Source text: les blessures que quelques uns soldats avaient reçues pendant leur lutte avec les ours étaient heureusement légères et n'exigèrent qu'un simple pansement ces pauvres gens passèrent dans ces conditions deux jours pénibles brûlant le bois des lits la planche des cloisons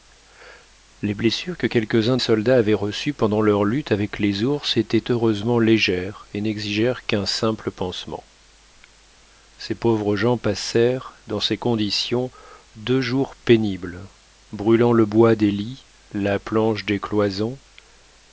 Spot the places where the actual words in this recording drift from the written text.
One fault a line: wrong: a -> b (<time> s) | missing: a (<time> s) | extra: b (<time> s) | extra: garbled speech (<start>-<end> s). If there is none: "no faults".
no faults